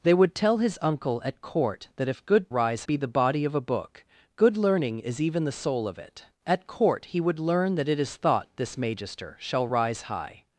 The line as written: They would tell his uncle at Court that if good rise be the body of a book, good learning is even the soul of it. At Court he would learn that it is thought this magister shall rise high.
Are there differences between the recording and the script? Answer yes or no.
no